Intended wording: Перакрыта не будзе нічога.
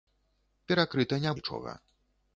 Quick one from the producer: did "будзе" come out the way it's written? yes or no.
no